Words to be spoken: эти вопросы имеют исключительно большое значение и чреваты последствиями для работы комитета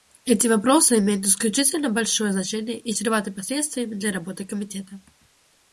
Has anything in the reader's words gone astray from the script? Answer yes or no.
no